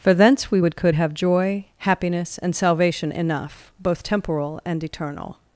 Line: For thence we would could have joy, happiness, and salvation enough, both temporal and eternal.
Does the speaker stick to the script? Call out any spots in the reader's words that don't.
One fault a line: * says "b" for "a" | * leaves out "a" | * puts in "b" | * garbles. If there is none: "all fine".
all fine